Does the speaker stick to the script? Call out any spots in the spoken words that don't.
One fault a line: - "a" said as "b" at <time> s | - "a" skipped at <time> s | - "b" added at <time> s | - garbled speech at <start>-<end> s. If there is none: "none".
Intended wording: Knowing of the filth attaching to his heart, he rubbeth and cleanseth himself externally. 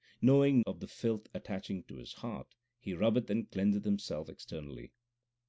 none